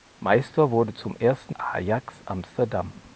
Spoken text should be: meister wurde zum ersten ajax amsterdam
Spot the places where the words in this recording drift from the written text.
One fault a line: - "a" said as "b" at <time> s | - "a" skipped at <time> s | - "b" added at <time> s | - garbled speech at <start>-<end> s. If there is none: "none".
none